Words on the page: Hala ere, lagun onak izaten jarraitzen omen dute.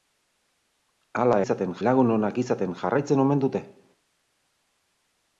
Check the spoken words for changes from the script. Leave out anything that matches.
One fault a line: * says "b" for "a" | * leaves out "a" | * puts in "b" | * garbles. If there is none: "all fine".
* says "izaten" for "ere"